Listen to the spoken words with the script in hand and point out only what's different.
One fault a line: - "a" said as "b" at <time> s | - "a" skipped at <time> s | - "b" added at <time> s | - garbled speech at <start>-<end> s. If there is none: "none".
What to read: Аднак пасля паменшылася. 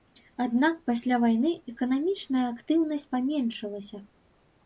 - "вайны эканамічная актыўнасць" added at 1.2 s